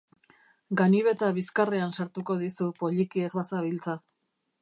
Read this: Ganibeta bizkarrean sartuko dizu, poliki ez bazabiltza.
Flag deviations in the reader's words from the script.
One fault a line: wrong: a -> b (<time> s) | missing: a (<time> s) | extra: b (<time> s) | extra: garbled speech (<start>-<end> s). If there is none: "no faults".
no faults